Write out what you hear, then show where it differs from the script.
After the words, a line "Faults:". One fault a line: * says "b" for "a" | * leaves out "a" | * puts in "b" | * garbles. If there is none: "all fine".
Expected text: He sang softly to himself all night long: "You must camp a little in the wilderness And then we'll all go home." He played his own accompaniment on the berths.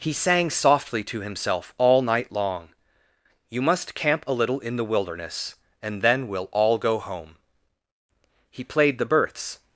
He sang softly to himself all night long: "You must camp a little in the wilderness And then we'll all go home." He played the berths.
Faults:
* leaves out "his own accompaniment on"